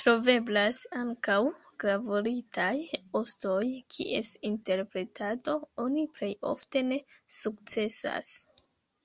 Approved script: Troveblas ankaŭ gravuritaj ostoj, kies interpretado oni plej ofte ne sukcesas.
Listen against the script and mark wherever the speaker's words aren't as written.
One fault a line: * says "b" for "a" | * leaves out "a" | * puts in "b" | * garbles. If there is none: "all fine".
all fine